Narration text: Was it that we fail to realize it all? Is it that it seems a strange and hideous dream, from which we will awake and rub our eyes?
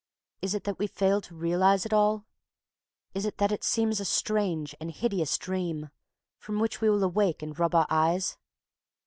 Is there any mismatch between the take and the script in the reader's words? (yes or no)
yes